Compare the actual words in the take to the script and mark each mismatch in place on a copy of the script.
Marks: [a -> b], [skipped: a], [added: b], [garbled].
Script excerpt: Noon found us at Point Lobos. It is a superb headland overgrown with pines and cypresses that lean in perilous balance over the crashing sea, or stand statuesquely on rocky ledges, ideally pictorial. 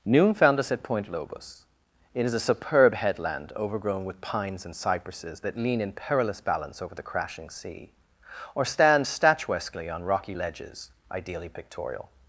Noon found us at Point Lobos. It is a superb headland overgrown with pines and cypresses that lean in perilous balance over the crashing sea, or stand statuesquely on rocky ledges, ideally pictorial.